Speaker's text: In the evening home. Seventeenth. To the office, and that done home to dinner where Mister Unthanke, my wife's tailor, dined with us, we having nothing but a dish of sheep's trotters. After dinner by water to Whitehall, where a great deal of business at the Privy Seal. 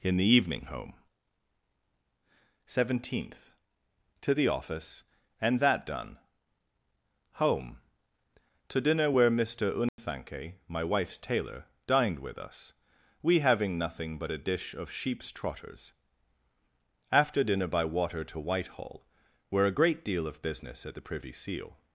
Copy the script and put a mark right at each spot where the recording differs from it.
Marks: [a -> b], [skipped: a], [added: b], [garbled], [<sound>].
In the evening home. Seventeenth. To the office, and that done home to dinner where Mister Unthanke, [dropout] my wife's tailor, dined with us, we having nothing but a dish of sheep's trotters. After dinner by water to Whitehall, where a great deal of business at the Privy Seal.